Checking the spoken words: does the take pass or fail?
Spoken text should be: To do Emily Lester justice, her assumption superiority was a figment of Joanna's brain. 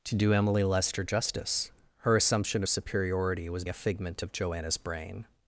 pass